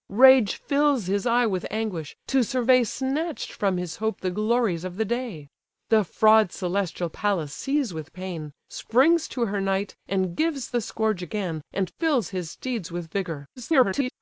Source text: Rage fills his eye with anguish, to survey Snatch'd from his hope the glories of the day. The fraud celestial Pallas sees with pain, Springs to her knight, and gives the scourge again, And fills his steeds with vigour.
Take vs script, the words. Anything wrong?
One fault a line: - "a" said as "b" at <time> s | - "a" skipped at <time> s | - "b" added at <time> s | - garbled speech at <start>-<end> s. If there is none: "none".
- garbled speech at 13.6-14.1 s